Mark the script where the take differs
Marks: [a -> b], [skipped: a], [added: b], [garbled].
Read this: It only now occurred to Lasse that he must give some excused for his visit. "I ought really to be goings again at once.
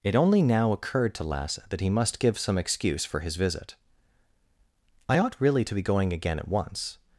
It only now occurred to Lasse that he must give some [excused -> excuse] for his visit. "I ought really to be [goings -> going] again at once.